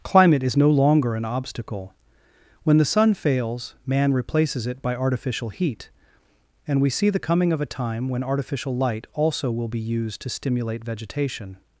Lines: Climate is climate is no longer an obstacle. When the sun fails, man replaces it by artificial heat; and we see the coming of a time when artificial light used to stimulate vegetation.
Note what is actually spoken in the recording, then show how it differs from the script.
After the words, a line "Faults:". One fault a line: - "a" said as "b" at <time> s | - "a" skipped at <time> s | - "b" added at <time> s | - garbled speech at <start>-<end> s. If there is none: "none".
Climate is no longer an obstacle. When the sun fails, man replaces it by artificial heat; and we see the coming of a time when artificial light also will be used to stimulate vegetation.
Faults:
- "climate is" skipped at 0.6 s
- "also will be" added at 9.1 s